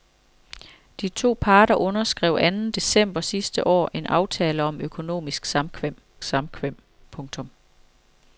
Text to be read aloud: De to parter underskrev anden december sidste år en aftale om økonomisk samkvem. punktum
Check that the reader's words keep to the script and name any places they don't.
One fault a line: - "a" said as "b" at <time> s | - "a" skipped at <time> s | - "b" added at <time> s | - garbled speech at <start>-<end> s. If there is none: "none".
- "samkvem" added at 6.2 s